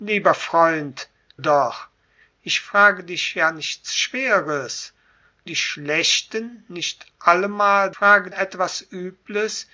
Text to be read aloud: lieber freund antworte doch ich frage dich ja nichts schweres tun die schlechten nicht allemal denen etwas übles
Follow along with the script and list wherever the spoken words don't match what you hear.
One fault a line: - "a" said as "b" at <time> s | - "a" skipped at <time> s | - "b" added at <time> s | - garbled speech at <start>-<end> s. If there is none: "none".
- "antworte" skipped at 1.1 s
- "tun" skipped at 4.9 s
- "denen" said as "frage" at 7.9 s